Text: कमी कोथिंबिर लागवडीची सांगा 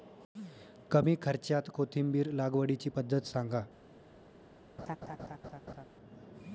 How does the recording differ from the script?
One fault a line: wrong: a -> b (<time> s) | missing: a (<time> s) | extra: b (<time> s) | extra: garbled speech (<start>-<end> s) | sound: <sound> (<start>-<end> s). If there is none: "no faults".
extra: खर्च्यात (1.2 s)
extra: पद्धत (2.9 s)
sound: laugh (4.8-5.9 s)